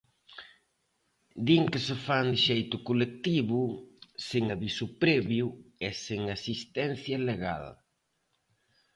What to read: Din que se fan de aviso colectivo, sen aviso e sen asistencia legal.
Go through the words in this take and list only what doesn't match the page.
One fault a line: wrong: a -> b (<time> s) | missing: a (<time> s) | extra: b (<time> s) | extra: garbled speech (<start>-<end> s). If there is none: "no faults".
wrong: aviso -> xeito (2.5 s)
extra: previo (5.0 s)